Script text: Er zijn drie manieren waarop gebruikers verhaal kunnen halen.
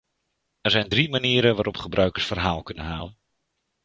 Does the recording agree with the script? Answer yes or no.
yes